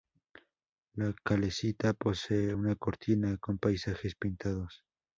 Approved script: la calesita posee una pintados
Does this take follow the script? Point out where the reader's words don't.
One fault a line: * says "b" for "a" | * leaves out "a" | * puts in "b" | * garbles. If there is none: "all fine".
* puts in "cortina con paisajes"